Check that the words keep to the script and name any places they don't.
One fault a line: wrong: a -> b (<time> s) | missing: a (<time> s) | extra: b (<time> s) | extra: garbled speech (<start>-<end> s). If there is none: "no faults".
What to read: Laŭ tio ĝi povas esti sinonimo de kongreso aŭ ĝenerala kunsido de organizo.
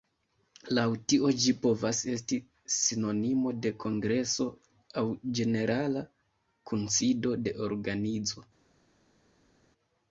no faults